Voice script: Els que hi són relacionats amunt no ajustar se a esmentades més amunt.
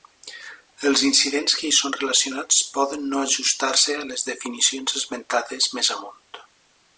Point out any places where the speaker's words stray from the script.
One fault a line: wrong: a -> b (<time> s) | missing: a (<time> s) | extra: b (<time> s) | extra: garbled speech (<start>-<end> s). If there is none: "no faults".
extra: incidents (1.1 s)
wrong: amunt -> poden (2.8 s)
extra: les definicions (4.1 s)